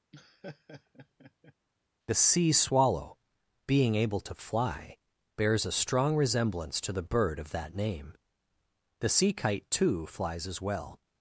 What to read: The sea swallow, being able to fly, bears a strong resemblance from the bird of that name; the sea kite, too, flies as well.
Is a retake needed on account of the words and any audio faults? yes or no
yes